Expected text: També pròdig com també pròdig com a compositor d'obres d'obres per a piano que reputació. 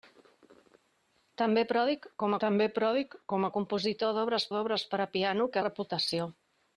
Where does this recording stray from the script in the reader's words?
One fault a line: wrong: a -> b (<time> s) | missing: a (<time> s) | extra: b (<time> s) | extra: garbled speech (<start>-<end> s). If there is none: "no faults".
no faults